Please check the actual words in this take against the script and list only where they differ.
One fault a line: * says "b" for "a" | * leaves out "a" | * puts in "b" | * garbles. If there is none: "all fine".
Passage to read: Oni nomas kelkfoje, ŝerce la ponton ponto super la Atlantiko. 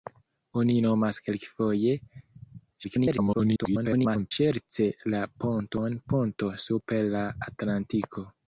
* garbles